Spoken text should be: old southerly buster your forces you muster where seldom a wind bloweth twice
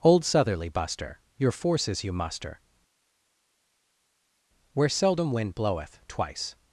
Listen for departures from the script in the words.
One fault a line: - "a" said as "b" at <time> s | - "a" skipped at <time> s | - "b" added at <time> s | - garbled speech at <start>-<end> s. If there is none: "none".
- "a" skipped at 5.3 s